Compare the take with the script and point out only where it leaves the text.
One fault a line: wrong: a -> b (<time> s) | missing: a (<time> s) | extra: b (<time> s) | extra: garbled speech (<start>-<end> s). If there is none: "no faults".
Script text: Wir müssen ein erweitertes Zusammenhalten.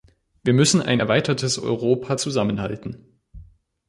extra: Europa (1.6 s)